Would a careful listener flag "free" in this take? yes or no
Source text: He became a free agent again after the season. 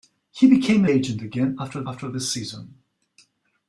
yes